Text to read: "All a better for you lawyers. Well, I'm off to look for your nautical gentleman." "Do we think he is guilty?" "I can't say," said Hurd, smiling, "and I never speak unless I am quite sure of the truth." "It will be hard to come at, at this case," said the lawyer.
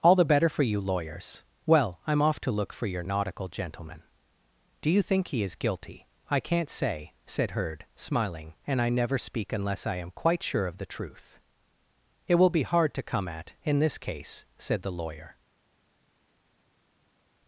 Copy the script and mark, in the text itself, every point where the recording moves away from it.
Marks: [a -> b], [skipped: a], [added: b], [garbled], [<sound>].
"All [a -> the] better for you lawyers. Well, I'm off to look for your nautical gentleman." "Do [we -> you] think he is guilty?" "I can't say," said Hurd, smiling, "and I never speak unless I am quite sure of the truth." "It will be hard to come at, [at -> in] this case," said the lawyer.